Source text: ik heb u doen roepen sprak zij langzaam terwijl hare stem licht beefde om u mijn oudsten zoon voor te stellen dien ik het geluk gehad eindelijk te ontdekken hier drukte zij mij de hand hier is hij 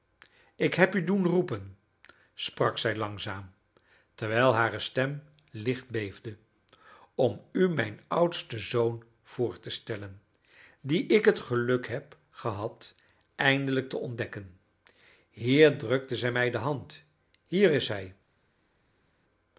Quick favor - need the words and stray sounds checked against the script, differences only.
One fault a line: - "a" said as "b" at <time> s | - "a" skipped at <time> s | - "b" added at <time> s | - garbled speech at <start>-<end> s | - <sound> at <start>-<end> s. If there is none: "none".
- "heb" added at 11.9 s